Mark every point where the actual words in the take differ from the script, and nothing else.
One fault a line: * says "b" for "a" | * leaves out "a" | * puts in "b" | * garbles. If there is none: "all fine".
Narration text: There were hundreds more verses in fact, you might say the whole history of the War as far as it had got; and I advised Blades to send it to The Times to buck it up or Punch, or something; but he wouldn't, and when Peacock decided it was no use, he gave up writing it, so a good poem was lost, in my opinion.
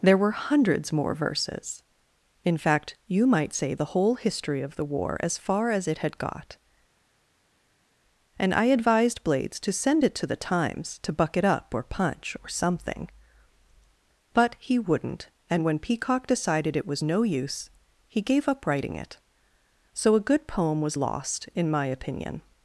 all fine